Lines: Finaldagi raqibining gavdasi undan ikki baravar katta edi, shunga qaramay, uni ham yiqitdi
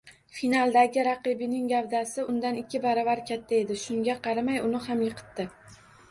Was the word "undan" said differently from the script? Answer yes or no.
no